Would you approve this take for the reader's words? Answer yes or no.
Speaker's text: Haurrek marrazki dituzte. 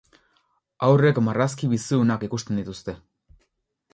no